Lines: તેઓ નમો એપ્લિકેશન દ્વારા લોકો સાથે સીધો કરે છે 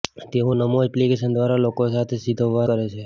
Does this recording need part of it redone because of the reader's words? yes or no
no